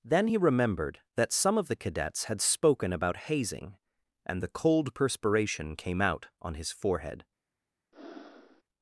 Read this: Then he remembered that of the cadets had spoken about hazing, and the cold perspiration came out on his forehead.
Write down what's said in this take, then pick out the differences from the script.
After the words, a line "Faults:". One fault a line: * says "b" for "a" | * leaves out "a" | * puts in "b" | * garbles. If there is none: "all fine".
Then he remembered that some of the cadets had spoken about hazing, and the cold perspiration came out on his forehead.
Faults:
* puts in "some"